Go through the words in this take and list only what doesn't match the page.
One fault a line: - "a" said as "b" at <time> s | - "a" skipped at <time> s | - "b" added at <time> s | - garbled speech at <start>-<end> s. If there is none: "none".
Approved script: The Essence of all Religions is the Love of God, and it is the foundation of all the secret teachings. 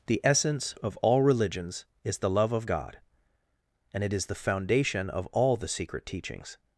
none